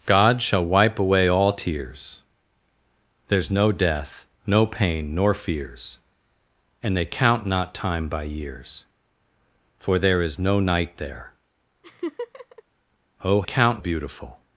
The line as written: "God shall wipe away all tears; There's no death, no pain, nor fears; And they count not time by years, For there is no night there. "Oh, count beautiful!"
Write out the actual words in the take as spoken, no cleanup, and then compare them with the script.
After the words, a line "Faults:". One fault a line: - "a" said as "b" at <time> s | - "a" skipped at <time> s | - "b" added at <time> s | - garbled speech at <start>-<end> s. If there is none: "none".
"God shall wipe away all tears; There's no death, no pain, nor fears; And they count not time by years, For there is no night there. "Oh, count beautiful!"
Faults:
none